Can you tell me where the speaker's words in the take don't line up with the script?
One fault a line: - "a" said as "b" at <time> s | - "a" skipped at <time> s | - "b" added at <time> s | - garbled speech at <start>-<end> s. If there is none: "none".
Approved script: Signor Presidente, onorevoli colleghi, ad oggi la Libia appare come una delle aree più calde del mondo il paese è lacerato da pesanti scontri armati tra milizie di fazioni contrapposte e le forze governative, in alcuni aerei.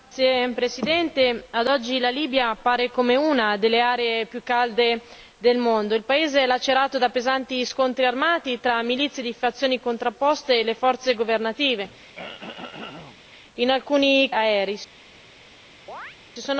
none